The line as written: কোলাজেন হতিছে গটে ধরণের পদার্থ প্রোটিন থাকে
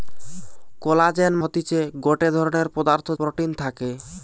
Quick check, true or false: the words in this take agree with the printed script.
true